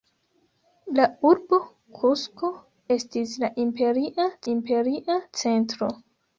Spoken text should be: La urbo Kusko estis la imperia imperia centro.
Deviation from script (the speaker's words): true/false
false